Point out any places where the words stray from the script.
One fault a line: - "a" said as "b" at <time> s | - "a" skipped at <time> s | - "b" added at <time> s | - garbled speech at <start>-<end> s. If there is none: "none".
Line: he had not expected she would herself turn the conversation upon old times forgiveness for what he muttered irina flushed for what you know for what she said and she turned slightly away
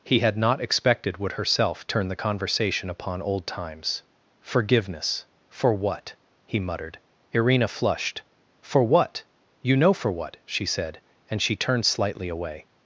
- "she" skipped at 1.2 s